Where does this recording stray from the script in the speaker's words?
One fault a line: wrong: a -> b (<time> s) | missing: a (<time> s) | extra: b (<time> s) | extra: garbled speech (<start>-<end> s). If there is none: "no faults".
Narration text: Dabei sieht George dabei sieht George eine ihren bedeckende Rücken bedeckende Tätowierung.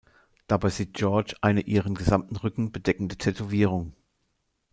missing: dabei sieht George (1.4 s)
wrong: bedeckende -> gesamten (1.9 s)